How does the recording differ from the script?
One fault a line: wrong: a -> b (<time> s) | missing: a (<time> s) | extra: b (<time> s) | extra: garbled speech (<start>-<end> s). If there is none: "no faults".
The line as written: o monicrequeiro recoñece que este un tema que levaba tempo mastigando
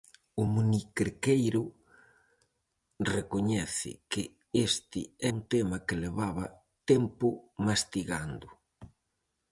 no faults